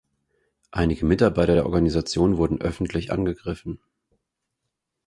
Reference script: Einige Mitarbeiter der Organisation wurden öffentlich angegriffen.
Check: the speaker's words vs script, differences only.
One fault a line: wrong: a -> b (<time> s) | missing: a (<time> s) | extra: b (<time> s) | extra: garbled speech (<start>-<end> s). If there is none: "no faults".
no faults